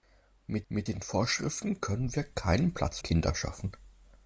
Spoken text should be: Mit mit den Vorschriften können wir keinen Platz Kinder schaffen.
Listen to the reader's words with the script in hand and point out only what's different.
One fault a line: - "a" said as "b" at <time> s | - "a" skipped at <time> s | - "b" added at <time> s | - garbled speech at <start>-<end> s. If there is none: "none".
none